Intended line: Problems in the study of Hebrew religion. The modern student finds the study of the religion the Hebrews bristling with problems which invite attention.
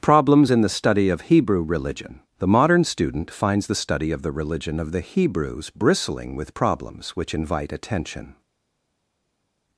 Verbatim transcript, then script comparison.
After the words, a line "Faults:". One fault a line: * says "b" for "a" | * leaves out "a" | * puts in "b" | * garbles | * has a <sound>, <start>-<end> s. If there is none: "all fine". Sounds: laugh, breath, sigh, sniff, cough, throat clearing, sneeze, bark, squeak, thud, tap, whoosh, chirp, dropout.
Problems in the study of Hebrew religion. The modern student finds the study of the religion of the Hebrews bristling with problems which invite attention.
Faults:
* puts in "of"